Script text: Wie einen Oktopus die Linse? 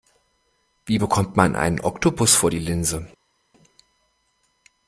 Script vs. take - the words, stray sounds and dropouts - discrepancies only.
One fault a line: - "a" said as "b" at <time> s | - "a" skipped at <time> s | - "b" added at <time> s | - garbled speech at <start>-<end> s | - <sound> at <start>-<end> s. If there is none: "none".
- "bekommt man" added at 0.9 s
- "vor" added at 2.3 s